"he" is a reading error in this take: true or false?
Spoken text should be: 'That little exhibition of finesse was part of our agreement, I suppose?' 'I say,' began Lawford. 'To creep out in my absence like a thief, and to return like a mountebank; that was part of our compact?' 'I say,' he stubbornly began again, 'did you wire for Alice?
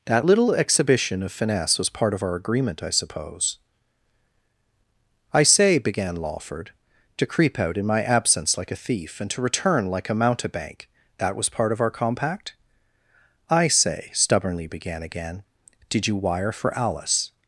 true